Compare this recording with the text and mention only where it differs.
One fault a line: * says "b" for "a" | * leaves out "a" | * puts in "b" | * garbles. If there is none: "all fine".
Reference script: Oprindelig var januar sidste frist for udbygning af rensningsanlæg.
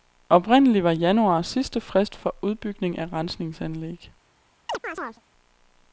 all fine